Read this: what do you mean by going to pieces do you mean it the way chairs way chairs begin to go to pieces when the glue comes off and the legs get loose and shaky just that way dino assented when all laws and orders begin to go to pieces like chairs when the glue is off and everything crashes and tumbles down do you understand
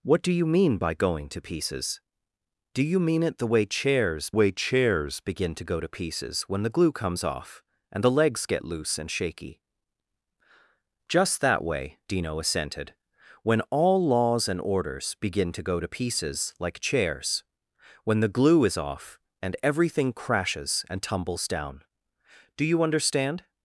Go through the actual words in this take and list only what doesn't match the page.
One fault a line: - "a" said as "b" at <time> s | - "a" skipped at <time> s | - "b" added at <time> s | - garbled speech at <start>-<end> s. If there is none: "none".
none